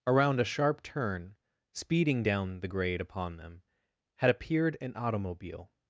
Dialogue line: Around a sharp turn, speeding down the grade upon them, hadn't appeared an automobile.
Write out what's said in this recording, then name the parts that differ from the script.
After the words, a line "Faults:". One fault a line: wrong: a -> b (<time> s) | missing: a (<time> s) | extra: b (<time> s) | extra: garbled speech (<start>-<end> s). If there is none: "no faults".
Around a sharp turn, speeding down the grade upon them, had appeared an automobile.
Faults:
wrong: hadn't -> had (4.2 s)